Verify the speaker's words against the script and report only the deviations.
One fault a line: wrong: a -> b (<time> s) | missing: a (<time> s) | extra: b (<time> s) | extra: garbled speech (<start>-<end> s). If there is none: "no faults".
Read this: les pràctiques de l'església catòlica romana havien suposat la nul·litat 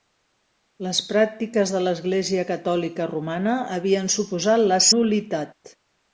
no faults